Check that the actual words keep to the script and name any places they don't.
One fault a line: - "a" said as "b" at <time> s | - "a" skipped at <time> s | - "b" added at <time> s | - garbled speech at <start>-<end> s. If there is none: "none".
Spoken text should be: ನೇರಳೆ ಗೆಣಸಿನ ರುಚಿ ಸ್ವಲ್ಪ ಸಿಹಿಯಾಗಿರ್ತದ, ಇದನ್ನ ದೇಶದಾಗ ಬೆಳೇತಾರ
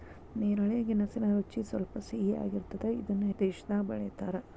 none